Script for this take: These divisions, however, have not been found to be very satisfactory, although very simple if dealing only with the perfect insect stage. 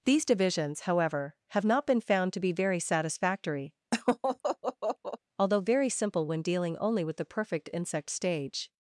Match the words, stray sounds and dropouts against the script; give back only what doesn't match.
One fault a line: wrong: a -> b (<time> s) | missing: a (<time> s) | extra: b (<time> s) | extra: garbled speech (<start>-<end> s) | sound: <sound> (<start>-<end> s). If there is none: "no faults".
sound: laugh (3.9-5.2 s)
wrong: if -> when (6.3 s)